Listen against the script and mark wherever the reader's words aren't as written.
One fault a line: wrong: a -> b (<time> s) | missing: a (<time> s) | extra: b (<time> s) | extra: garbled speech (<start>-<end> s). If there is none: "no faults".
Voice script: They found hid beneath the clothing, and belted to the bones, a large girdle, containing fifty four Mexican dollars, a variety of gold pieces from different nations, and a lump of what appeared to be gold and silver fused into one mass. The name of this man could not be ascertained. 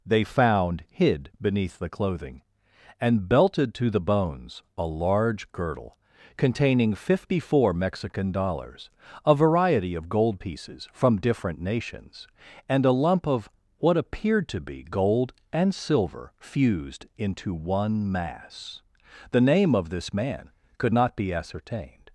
no faults